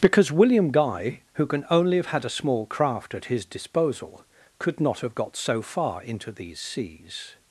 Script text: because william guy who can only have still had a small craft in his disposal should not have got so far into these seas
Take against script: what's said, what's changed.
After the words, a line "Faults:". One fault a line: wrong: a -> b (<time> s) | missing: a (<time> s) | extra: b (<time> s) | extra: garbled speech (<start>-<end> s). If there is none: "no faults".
because william guy who can only have had a small craft at his disposal could not have got so far into these seas
Faults:
missing: still (2.1 s)
wrong: in -> at (3.1 s)
wrong: should -> could (4.6 s)